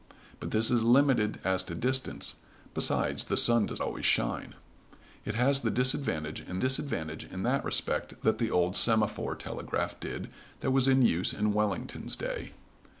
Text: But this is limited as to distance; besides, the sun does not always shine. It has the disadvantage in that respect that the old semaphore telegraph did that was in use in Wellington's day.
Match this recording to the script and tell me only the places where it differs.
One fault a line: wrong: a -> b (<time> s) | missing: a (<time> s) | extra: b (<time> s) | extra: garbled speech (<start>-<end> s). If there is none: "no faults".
missing: not (3.8 s)
extra: disadvantage in (6.6 s)